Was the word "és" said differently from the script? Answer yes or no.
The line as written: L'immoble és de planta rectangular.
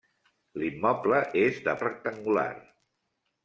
no